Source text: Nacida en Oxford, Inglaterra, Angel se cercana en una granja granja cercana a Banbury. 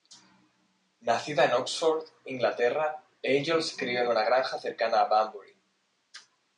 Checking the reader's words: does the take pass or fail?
fail